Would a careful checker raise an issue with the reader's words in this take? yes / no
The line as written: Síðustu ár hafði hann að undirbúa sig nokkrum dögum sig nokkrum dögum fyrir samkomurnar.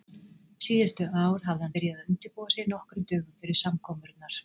yes